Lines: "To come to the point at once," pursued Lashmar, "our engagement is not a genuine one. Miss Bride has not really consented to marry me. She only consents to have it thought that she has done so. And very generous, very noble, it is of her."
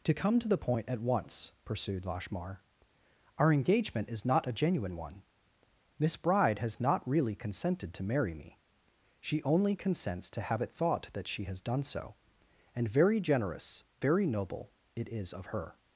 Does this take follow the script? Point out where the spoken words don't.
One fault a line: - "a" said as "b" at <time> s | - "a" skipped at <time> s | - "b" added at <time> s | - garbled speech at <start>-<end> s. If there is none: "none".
none